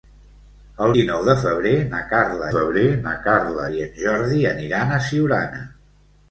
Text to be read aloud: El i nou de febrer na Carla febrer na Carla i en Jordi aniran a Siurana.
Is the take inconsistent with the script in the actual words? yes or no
no